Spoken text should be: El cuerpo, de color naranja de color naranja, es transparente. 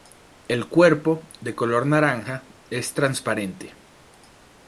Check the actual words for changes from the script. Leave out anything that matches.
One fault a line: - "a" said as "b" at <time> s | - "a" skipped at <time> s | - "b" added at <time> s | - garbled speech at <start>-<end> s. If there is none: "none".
- "de color naranja" skipped at 2.5 s